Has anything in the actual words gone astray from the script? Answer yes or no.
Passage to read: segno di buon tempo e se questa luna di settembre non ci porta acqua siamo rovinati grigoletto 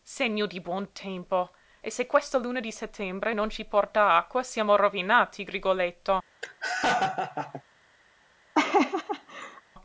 no